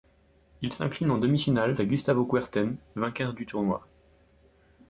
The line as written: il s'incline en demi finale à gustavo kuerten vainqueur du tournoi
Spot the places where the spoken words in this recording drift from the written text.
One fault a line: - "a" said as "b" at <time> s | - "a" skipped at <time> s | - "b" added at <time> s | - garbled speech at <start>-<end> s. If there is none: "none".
none